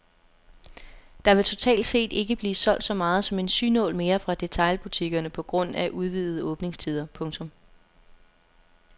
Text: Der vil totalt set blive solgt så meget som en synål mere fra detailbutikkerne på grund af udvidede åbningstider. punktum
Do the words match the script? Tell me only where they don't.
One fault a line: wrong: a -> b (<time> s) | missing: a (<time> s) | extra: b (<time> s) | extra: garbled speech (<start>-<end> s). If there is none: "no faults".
extra: ikke (2.1 s)